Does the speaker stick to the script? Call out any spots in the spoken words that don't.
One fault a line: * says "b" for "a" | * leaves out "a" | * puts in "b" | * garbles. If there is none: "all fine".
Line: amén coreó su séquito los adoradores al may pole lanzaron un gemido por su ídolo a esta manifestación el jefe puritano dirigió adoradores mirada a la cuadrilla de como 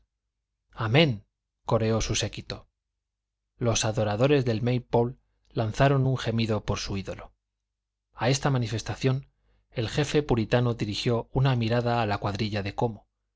* says "del" for "al"
* says "una" for "adoradores"